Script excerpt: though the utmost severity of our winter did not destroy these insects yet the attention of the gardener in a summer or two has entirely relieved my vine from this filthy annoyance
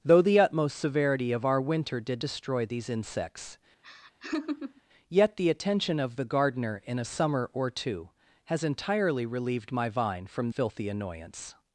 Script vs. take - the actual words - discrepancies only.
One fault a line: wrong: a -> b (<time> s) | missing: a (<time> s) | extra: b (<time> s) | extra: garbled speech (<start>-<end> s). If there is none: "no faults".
missing: not (2.2 s)
missing: this (10.5 s)